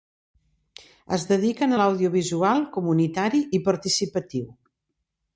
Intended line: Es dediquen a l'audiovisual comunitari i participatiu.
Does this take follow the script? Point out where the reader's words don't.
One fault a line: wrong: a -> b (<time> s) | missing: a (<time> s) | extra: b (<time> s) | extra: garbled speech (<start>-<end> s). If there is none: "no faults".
no faults